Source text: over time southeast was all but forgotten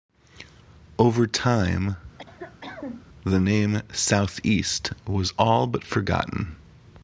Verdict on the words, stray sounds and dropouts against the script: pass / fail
fail